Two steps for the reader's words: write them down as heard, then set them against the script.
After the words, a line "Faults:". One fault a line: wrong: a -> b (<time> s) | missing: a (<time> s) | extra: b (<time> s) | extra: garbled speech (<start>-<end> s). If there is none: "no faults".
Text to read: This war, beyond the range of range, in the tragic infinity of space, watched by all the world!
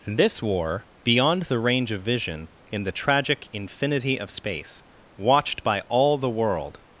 This war, beyond the range of vision, in the tragic infinity of space, watched by all the world!
Faults:
wrong: range -> vision (2.0 s)